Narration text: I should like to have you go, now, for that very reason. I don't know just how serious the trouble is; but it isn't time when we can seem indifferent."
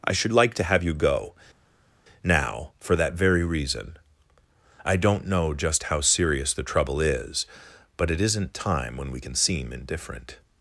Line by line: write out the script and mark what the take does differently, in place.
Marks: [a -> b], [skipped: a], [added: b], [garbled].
I should like to have you go, now, for that very reason. I don't know just how serious the trouble is; but it isn't time when we can seem indifferent."